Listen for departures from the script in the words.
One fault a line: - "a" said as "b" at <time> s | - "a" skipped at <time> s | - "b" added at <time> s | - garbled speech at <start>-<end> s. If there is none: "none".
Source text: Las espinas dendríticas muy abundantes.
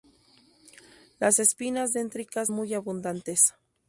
none